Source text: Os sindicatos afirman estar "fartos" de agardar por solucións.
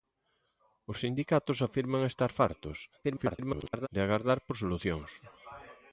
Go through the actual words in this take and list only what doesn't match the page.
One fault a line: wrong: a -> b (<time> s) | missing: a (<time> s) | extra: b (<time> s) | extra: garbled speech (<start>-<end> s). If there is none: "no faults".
extra: garbled speech (3.0-3.9 s)